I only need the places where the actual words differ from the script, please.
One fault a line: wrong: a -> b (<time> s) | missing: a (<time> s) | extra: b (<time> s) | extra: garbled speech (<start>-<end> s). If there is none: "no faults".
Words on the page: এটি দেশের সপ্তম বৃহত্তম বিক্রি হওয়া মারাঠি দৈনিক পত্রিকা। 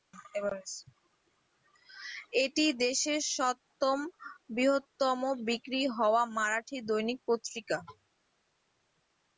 no faults